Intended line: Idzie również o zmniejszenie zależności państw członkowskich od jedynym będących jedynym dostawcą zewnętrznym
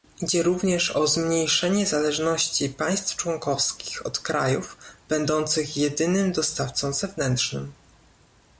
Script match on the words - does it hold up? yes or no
no